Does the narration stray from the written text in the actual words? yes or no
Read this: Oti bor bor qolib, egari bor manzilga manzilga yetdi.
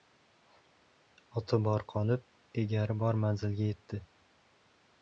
yes